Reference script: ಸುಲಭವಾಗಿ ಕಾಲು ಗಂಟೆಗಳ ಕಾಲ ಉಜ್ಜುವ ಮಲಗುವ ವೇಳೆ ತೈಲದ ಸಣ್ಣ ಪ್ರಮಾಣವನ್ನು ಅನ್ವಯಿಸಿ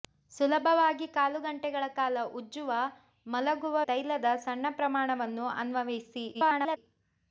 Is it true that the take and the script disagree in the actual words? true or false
true